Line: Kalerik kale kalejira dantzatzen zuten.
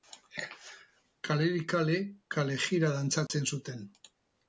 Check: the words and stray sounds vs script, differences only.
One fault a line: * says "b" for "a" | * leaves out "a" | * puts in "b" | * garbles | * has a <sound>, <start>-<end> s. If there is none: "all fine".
* has a dropout, 3.3-3.3 s